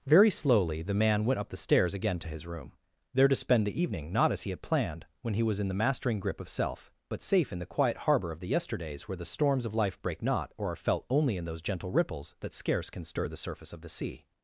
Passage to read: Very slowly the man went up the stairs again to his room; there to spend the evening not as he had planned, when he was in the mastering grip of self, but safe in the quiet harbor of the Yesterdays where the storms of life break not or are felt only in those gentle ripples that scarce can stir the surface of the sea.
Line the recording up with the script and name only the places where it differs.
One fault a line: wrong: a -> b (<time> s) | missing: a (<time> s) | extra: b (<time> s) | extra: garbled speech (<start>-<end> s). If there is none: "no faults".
no faults